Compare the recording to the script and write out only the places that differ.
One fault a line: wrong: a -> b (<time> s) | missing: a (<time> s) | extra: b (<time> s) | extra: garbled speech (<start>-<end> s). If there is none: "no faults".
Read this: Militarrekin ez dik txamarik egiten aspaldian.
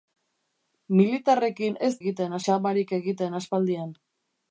wrong: dik -> egiten (2.0 s)